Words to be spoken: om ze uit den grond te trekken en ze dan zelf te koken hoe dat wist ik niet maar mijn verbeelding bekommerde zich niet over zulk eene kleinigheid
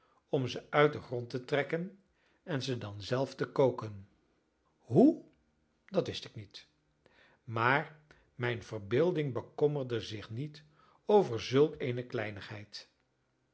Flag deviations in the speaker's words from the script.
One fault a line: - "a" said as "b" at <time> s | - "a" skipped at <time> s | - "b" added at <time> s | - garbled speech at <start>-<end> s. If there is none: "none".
none